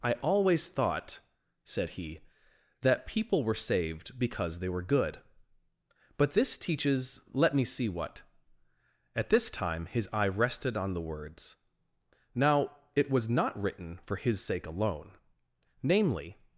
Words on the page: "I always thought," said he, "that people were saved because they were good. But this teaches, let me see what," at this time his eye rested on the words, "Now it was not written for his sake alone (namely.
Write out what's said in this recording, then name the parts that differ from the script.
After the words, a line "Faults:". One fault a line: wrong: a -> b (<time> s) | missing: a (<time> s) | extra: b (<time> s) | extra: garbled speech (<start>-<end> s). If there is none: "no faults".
"I always thought," said he, "that people were saved because they were good. But this teaches, let me see what," at this time his eye rested on the words, "Now it was not written for his sake alone (namely.
Faults:
no faults